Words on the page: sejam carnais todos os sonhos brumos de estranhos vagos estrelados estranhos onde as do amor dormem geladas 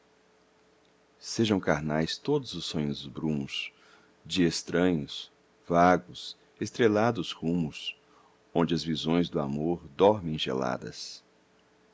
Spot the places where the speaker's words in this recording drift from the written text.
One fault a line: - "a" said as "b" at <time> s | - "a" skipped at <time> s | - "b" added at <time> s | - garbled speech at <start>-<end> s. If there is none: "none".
- "estranhos" said as "rumos" at 7.3 s
- "visões" added at 8.8 s